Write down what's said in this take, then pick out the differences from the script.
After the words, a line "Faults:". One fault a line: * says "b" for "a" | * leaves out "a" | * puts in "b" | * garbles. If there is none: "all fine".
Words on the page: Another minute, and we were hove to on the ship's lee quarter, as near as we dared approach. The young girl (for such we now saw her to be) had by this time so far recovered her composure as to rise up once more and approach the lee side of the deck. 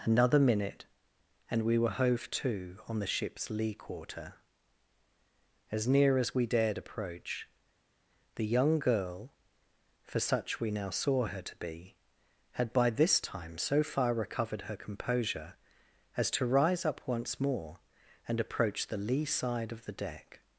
Another minute, and we were hove to on the ship's lee quarter, as near as we dared approach. The young girl (for such we now saw her to be) had by this time so far recovered her composure as to rise up once more and approach the lee side of the deck.
Faults:
all fine